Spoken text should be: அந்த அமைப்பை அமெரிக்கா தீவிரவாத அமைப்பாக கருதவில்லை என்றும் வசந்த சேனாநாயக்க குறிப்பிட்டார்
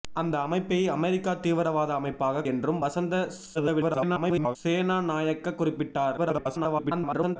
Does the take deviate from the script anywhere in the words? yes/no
yes